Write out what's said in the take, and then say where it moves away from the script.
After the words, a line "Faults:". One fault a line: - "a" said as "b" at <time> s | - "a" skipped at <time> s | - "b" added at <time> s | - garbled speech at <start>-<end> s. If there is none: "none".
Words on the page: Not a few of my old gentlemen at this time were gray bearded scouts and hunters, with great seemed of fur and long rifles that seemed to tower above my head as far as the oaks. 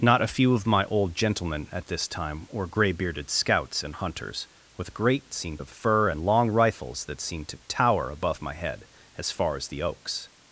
Not a few of my old gentlemen at this time were gray bearded scouts and hunters, with great seemed of fur and long rifles that seemed to tower above my head as far as the oaks.
Faults:
none